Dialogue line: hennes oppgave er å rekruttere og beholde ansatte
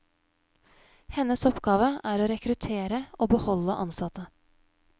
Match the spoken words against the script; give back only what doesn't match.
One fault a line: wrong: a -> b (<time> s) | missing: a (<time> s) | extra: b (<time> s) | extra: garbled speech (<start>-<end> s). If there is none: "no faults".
no faults